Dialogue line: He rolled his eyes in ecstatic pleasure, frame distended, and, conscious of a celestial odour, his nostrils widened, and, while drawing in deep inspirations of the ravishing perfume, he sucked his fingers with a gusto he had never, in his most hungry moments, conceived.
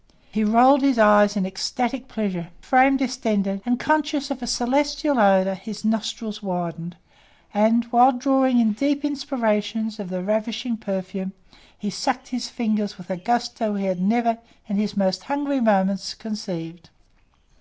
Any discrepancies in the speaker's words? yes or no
no